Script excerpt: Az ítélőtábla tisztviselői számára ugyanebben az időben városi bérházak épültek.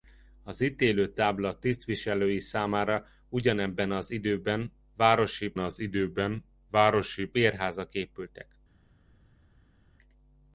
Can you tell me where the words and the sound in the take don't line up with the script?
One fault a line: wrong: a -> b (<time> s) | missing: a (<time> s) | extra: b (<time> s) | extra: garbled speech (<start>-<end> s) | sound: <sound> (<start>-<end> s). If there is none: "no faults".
extra: az időben városi (5.6 s)